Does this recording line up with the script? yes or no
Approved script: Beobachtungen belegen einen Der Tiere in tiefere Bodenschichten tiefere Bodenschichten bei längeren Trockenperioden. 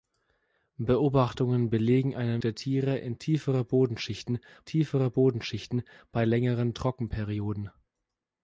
yes